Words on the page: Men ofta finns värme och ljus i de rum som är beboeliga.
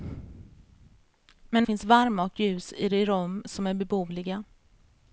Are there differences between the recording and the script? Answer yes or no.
yes